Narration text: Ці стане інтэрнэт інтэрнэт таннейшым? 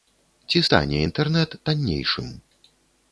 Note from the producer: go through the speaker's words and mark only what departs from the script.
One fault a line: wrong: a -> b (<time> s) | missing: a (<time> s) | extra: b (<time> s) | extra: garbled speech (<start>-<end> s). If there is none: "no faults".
missing: інтэрнэт (1.6 s)